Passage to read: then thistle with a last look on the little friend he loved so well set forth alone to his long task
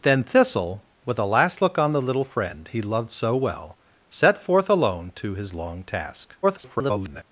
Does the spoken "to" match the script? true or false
true